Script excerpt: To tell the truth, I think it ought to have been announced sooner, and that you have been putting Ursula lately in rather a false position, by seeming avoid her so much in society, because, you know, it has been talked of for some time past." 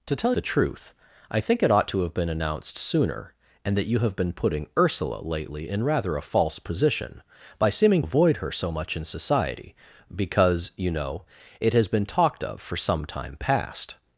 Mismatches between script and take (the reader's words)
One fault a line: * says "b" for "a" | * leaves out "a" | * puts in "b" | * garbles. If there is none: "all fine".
all fine